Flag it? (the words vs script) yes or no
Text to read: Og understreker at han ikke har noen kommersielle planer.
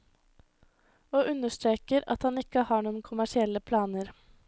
no